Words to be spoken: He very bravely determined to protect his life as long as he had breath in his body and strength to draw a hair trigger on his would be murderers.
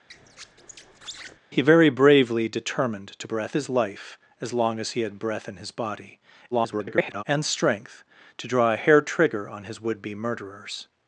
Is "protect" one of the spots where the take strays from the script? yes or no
yes